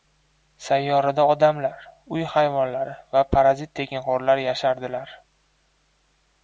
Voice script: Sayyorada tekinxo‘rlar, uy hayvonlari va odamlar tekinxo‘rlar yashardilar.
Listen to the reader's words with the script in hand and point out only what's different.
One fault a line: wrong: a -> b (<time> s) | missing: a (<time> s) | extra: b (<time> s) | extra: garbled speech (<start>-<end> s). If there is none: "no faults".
wrong: tekinxo‘rlar -> odamlar (1.3 s)
wrong: odamlar -> parazit (3.4 s)